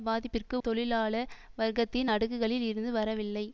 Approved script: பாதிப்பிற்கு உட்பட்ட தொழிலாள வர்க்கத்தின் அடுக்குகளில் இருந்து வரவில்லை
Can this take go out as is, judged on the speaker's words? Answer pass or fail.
fail